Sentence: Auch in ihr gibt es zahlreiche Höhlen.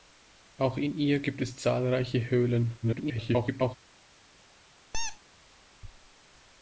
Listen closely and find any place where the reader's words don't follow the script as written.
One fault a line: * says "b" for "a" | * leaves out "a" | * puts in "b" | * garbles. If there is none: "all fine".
* garbles